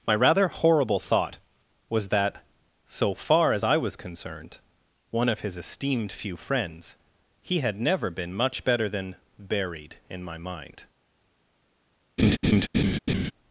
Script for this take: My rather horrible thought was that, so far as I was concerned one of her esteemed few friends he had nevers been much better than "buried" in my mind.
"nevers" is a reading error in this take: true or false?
true